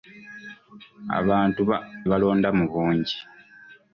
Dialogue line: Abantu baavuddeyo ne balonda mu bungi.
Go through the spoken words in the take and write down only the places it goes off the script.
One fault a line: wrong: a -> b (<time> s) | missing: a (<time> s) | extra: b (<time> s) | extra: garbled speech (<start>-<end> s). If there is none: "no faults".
missing: baavuddeyo ne (1.6 s)